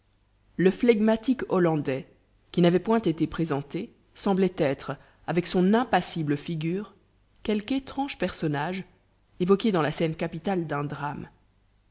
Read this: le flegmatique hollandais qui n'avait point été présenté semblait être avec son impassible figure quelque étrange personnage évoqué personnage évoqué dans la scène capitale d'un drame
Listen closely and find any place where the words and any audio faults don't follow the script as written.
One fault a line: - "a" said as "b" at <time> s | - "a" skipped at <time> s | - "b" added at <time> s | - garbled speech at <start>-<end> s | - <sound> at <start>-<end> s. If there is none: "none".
- "personnage évoqué" skipped at 9.7 s